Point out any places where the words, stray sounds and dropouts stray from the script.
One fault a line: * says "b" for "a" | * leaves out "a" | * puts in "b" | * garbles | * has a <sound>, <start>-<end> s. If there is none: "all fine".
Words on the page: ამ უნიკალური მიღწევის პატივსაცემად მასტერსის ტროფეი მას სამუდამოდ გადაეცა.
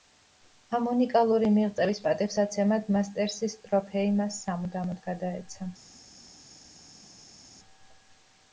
all fine